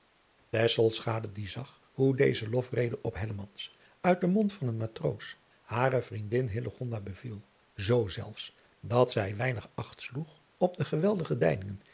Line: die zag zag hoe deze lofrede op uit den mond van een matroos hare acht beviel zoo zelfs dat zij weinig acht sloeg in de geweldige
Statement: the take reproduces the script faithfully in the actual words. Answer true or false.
false